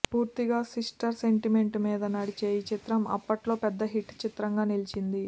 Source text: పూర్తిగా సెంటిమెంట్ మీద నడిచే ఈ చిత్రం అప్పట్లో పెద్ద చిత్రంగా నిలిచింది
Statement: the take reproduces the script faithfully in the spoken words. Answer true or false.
false